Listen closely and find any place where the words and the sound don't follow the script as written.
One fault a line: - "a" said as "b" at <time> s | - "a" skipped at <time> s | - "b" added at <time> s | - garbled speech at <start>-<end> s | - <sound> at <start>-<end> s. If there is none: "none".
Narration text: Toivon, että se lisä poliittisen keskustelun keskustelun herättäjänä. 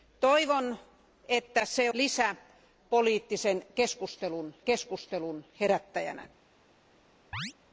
- chirp at 7.3-7.5 s